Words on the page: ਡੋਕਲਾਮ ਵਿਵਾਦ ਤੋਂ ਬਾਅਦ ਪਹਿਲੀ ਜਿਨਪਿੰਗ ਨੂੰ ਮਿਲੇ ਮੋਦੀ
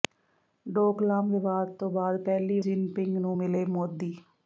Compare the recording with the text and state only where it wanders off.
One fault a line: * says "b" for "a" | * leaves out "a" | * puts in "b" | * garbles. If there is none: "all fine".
all fine